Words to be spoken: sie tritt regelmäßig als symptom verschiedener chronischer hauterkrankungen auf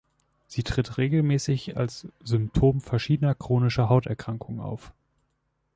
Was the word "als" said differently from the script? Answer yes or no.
no